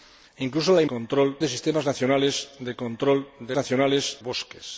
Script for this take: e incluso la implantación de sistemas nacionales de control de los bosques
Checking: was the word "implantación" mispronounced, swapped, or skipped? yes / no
yes